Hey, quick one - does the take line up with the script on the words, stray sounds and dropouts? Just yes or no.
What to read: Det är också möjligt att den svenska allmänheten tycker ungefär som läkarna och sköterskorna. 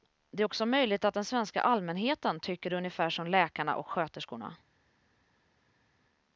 yes